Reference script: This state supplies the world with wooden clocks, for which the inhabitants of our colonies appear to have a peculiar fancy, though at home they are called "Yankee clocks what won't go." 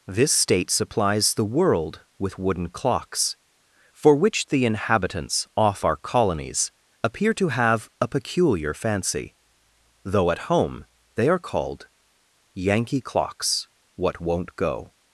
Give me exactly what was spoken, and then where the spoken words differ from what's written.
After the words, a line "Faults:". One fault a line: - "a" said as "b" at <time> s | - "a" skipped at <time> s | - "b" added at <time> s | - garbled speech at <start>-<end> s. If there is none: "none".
This state supplies the world with wooden clocks, for which the inhabitants off our colonies appear to have a peculiar fancy, though at home they are called "Yankee clocks what won't go."
Faults:
- "of" said as "off" at 5.6 s